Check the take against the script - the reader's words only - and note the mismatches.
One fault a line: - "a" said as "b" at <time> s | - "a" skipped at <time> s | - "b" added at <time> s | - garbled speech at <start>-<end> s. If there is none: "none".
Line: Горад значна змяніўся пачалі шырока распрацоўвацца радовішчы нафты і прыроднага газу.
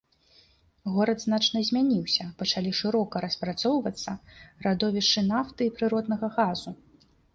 none